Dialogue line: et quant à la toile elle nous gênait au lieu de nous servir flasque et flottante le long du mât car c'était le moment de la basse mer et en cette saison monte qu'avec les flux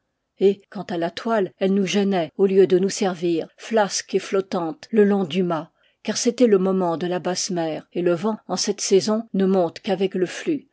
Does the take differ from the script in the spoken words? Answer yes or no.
yes